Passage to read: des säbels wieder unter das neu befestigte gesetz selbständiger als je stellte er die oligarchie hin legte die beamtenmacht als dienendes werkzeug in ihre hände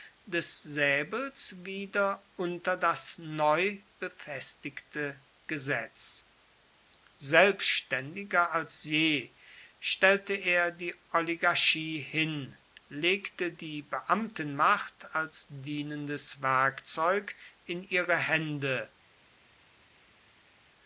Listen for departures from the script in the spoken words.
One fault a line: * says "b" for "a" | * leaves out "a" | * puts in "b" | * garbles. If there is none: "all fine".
all fine